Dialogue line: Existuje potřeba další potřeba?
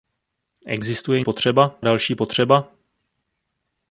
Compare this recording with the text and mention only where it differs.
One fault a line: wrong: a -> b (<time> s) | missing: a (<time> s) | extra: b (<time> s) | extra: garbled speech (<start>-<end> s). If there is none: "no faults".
no faults